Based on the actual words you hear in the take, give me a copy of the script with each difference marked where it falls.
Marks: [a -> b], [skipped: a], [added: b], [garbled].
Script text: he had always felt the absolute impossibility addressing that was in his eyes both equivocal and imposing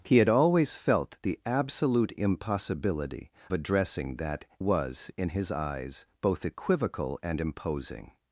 he had always felt the absolute impossibility addressing that was in his eyes both equivocal and imposing